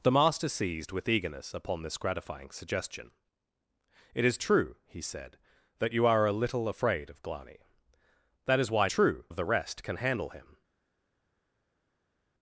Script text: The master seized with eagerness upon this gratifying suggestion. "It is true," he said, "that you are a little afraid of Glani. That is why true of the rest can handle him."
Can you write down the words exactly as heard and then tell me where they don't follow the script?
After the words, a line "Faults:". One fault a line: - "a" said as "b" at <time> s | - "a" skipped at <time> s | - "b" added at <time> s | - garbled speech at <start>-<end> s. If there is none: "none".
The master seized with eagerness upon this gratifying suggestion. "It is true," he said, "that you are a little afraid of Glani. That is why true of the rest can handle him."
Faults:
none